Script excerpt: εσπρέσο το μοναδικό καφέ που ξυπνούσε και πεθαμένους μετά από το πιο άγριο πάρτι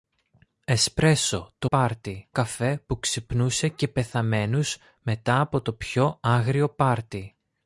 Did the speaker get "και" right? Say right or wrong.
right